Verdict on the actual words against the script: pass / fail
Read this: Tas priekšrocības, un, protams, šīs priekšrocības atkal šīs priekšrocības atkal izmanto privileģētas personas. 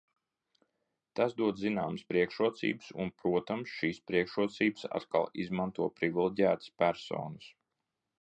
fail